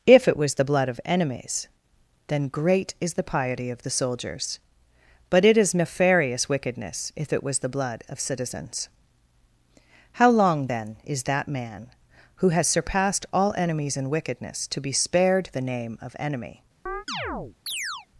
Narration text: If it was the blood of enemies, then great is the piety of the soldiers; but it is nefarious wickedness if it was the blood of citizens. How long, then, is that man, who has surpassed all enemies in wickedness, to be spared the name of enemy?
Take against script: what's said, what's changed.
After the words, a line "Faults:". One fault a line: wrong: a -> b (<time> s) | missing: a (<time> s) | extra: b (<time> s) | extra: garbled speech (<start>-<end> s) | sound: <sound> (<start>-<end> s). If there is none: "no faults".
If it was the blood of enemies, then great is the piety of the soldiers; but it is nefarious wickedness if it was the blood of citizens. How long, then, is that man, who has surpassed all enemies in wickedness, to be spared the name of enemy?
Faults:
sound: chirp (16.9-18.1 s)